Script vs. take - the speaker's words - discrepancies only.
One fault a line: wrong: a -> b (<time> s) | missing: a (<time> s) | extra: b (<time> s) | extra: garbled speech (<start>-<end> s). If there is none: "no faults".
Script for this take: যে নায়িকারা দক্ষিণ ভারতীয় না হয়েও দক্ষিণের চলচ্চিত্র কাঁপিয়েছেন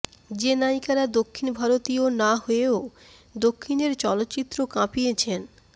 no faults